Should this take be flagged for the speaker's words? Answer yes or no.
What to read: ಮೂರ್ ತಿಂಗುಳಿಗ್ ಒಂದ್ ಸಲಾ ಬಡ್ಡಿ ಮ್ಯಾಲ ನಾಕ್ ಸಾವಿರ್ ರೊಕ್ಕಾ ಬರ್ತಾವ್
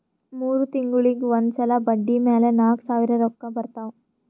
no